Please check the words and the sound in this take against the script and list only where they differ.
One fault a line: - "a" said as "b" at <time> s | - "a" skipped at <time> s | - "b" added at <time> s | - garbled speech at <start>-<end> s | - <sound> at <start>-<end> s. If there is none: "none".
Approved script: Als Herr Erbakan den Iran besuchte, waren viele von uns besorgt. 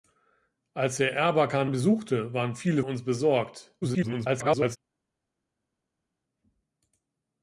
- "den Iran" skipped at 1.7 s
- "von" skipped at 2.8 s
- garbled speech at 3.8-4.8 s